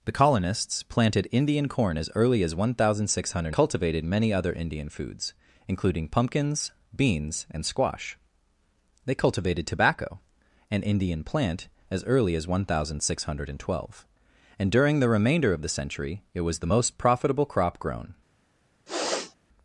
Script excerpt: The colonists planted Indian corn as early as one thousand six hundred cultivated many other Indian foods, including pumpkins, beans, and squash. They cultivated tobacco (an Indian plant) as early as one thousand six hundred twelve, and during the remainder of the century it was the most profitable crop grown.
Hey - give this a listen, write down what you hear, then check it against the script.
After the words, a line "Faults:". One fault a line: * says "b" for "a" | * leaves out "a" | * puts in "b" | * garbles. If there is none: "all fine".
The colonists planted Indian corn as early as one thousand six hundred cultivated many other Indian foods, including pumpkins, beans, and squash. They cultivated tobacco (an Indian plant) as early as one thousand six hundred twelve, and during the remainder of the century it was the most profitable crop grown.
Faults:
all fine